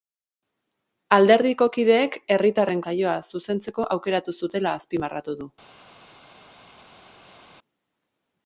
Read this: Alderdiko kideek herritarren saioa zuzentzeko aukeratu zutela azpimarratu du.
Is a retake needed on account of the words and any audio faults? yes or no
no